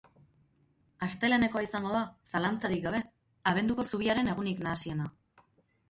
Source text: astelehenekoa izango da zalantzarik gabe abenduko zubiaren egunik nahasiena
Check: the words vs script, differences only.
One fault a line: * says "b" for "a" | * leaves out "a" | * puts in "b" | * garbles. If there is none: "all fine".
all fine